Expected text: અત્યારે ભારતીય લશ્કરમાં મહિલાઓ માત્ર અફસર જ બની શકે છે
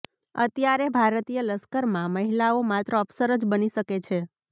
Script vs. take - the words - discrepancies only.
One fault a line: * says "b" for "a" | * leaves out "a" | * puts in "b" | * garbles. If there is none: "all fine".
all fine